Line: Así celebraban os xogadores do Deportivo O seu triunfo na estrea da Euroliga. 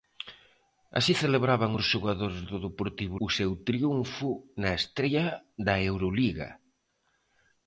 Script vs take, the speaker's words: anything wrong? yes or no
no